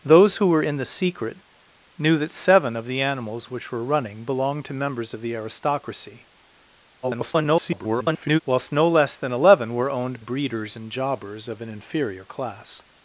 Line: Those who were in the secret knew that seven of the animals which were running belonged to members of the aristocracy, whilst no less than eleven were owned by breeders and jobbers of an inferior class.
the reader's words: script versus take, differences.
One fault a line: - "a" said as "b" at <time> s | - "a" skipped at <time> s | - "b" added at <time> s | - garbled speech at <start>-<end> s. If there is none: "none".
- garbled speech at 7.0-8.4 s
- "by" skipped at 10.2 s